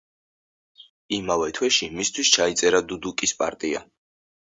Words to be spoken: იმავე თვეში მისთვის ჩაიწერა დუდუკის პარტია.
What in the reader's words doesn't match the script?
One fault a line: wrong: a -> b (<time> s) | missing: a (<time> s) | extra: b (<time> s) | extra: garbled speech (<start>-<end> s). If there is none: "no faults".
no faults